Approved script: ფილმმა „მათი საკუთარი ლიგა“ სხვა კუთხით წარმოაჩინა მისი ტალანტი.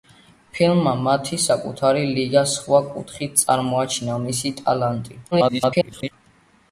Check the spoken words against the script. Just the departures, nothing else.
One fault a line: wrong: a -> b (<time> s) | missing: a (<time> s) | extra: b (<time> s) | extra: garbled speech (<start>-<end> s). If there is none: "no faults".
extra: garbled speech (5.3-6.1 s)